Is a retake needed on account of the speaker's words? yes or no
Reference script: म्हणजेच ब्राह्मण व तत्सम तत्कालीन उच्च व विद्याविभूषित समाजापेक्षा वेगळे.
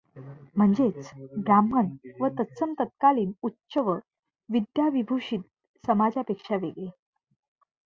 no